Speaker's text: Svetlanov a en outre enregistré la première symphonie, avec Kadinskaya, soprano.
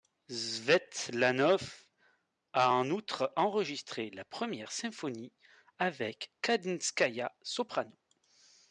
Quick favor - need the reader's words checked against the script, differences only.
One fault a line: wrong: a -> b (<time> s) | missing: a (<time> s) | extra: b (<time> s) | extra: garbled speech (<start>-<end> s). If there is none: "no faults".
no faults